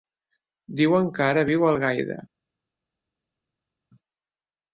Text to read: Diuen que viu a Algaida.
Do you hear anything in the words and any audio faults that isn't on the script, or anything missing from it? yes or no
yes